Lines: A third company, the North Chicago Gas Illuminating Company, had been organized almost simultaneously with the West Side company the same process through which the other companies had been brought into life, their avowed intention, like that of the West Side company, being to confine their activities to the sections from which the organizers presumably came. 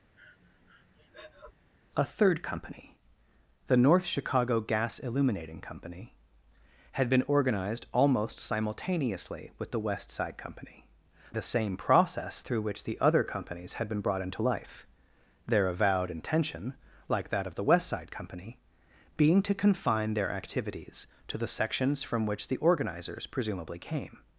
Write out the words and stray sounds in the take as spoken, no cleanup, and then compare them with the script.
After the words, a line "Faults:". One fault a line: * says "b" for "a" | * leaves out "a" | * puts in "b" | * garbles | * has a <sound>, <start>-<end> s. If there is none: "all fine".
A third company, the North Chicago Gas Illuminating Company, had been organized almost simultaneously with the West Side company the same process through which the other companies had been brought into life, their avowed intention, like that of the West Side company, being to confine their activities to the sections from which the organizers presumably came.
Faults:
* has a breath, 0.2-1.5 s